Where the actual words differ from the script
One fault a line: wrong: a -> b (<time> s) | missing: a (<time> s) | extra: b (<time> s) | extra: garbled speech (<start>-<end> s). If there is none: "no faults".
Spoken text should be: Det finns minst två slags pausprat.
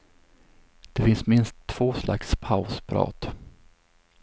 no faults